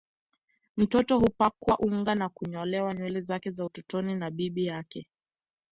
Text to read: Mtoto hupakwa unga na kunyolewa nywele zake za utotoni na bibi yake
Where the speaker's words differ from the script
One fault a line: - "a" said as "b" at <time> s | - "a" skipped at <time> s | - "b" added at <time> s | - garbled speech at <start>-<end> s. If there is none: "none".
none